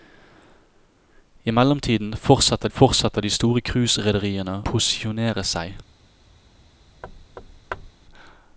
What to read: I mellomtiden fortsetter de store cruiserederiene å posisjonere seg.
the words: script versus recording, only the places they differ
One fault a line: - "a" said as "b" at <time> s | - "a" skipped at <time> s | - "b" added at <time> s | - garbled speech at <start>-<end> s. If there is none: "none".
- "fortsetter" added at 2.7 s
- "å" skipped at 4.6 s